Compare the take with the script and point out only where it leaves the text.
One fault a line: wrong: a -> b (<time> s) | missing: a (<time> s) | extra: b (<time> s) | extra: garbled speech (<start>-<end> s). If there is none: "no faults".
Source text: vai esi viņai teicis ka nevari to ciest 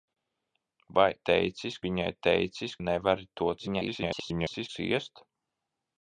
wrong: esi -> teicis (1.3 s)
missing: ka (2.7 s)
extra: garbled speech (3.6-4.7 s)